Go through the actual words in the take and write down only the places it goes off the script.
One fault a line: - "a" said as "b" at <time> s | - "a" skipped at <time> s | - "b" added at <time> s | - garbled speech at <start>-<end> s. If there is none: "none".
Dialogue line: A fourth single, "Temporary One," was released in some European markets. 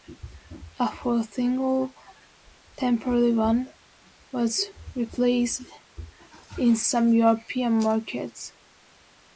none